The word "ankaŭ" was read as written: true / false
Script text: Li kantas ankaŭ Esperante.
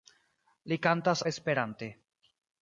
false